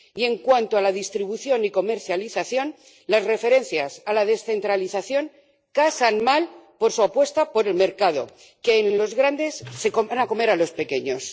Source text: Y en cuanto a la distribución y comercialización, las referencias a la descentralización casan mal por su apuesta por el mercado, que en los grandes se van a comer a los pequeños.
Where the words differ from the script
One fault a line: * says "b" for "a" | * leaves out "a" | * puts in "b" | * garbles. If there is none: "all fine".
* puts in "en"